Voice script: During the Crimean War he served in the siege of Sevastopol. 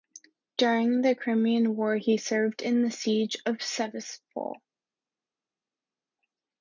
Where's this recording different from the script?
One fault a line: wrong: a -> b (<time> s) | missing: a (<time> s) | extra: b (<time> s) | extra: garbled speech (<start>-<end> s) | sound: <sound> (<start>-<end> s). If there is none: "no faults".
no faults